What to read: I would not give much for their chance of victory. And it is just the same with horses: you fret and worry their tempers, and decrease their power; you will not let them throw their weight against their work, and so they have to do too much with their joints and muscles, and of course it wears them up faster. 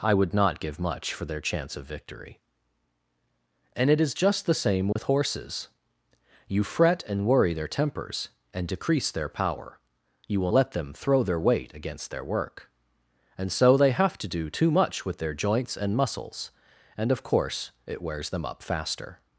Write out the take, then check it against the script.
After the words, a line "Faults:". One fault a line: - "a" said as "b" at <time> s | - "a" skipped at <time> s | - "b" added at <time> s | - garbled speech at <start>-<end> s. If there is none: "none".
I would not give much for their chance of victory. And it is just the same with horses: you fret and worry their tempers, and decrease their power; you will let them throw their weight against their work, and so they have to do too much with their joints and muscles, and of course it wears them up faster.
Faults:
- "not" skipped at 10.5 s